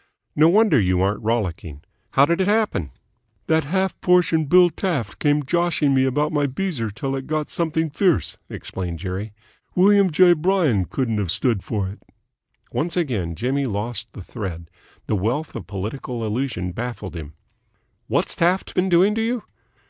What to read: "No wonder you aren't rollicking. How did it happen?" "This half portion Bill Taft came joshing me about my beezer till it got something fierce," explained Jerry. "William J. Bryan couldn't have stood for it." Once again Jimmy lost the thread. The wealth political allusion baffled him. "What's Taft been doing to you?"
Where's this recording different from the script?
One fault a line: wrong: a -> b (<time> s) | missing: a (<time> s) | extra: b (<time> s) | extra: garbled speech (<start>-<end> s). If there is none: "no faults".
wrong: This -> That (3.5 s)
extra: of (15.5 s)